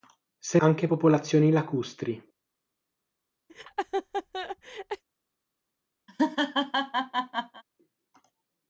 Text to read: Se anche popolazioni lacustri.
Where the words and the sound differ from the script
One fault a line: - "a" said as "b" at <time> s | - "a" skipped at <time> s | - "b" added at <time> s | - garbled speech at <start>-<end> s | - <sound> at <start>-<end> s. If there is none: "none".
- laugh at 3.5-5.0 s
- laugh at 6.1-7.6 s